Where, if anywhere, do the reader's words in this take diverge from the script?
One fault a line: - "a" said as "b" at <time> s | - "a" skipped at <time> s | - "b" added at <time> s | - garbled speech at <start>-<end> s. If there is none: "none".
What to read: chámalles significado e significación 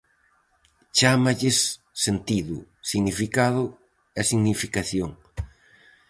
- "sentido" added at 2.0 s